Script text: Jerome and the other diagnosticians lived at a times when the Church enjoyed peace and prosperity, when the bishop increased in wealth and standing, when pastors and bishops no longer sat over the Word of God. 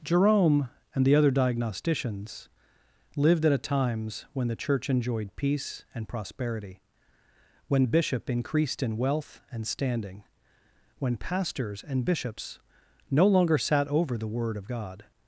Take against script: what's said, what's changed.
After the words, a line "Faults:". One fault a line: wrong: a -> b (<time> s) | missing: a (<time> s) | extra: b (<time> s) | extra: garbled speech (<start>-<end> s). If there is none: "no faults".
Jerome and the other diagnosticians lived at a times when the Church enjoyed peace and prosperity, when the bishop increased in wealth and standing, when pastors and bishops no longer sat over the Word of God.
Faults:
no faults